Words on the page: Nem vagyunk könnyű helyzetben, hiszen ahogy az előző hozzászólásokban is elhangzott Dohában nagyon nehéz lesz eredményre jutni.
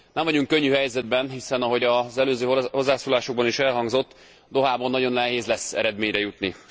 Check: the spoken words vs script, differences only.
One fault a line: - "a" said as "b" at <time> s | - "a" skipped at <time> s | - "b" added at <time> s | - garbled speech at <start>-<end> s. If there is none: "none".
none